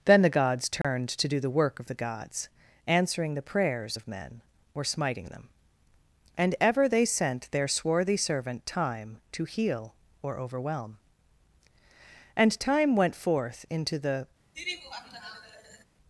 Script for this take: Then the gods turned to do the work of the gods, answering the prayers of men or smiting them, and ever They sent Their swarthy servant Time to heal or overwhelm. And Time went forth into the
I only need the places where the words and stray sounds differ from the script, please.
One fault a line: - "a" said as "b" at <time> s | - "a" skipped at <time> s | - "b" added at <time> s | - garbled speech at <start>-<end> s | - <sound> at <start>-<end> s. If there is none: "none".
- dropout at 0.8-0.8 s
- laugh at 14.5-15.8 s